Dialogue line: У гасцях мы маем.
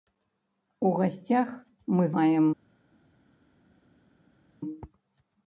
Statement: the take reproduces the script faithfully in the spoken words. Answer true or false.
true